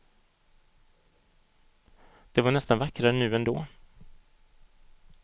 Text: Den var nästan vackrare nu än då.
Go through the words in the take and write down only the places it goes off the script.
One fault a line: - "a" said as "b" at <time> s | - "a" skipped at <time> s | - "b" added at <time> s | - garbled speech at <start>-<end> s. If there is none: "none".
- "Den" said as "Det" at 2.3 s